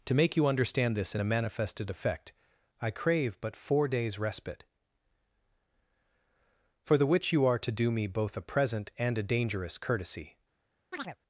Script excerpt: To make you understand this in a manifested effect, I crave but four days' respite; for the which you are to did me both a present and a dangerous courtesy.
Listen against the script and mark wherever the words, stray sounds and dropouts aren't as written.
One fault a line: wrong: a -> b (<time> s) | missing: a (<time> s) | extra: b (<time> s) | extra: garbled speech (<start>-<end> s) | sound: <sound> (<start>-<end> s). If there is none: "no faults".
wrong: did -> do (7.7 s)
sound: chirp (10.9-11.2 s)